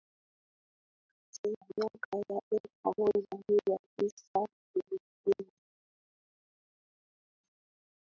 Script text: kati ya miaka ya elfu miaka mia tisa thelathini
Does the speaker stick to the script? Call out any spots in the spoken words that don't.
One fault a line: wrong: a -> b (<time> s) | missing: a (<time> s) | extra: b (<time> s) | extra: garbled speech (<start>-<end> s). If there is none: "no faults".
wrong: miaka -> moja (3.0 s)